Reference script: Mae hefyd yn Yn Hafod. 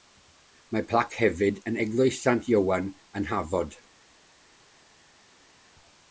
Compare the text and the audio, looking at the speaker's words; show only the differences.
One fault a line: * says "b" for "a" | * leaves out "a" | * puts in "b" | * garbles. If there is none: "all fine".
* puts in "plac"
* puts in "Eglwys Sant Ioan"